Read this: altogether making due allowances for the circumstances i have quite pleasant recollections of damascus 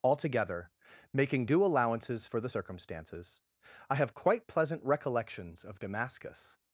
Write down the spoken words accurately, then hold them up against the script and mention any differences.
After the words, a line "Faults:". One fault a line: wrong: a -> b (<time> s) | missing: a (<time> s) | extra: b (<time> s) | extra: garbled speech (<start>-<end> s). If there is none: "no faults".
altogether making due allowances for the circumstances i have quite pleasant recollections of damascus
Faults:
no faults